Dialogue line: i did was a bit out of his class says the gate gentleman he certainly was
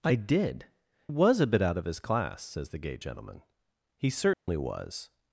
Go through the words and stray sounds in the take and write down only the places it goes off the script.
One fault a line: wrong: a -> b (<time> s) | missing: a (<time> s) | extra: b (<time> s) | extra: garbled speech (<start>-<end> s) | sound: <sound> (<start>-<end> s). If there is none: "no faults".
sound: dropout (4.3-4.5 s)